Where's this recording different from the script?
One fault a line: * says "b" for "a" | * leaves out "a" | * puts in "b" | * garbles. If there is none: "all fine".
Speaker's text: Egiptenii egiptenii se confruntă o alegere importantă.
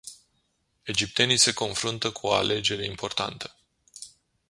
* leaves out "egiptenii"
* puts in "cu"